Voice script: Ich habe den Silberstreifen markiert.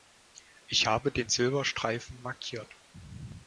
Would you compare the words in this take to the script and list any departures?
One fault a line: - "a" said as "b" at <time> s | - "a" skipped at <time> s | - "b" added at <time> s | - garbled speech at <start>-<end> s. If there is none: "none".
none